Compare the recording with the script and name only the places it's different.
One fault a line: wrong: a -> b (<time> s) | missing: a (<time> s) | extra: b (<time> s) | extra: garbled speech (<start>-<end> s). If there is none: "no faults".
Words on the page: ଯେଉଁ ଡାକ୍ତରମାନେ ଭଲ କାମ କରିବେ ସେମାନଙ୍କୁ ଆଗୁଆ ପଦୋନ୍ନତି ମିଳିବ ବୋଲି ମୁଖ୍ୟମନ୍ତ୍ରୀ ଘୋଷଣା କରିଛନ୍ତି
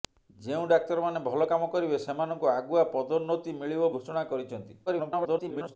missing: ବୋଲି ମୁଖ୍ୟମନ୍ତ୍ରୀ (3.9 s)
extra: garbled speech (4.9-5.8 s)